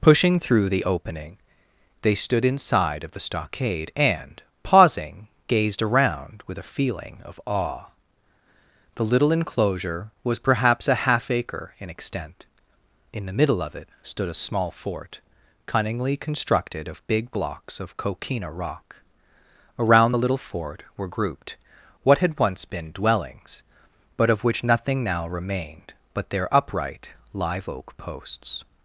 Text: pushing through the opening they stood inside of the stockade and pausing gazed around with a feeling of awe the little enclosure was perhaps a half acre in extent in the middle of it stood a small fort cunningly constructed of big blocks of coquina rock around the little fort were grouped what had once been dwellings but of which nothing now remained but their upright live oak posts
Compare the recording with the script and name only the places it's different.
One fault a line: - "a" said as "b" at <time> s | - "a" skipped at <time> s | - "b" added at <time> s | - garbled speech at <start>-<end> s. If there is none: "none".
none